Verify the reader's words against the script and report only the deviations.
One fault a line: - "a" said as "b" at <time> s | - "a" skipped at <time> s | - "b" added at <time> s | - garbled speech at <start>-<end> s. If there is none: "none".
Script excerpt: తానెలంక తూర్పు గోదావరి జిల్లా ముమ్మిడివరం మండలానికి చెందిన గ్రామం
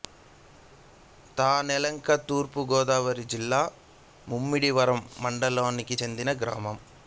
none